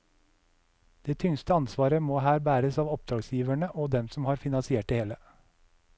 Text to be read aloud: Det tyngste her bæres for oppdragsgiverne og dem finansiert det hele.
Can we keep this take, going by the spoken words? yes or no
no